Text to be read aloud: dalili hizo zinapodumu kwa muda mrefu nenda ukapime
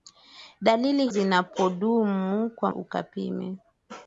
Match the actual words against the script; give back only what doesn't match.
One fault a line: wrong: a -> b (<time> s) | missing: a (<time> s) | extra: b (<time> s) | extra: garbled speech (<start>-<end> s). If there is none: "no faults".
missing: hizo (1.1 s)
missing: muda mrefu nenda (2.7 s)